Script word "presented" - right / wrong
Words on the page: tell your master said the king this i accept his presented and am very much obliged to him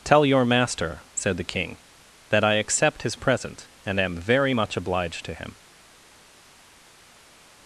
wrong